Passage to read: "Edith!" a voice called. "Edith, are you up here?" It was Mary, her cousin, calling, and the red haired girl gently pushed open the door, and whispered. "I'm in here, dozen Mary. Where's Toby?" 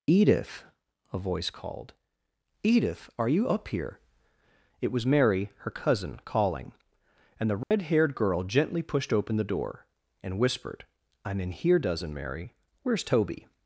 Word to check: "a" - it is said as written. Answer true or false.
true